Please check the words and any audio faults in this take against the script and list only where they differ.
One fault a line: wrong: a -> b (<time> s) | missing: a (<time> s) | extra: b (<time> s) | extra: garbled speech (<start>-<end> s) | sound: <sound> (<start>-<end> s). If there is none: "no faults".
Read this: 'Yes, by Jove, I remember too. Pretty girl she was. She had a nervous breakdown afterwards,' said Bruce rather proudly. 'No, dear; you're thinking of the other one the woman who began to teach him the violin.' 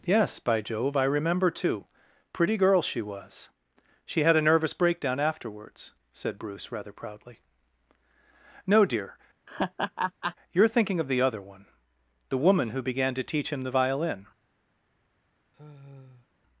sound: laugh (9.5-10.3 s)
sound: sigh (15.5-16.3 s)